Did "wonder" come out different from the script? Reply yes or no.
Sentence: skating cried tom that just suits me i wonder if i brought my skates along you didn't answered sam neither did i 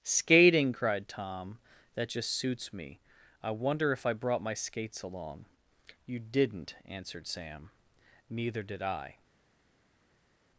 no